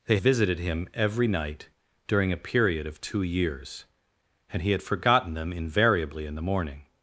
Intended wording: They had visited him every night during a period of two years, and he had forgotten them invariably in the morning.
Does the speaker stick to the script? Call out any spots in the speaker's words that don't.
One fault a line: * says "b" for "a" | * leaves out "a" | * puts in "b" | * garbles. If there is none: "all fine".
* leaves out "had"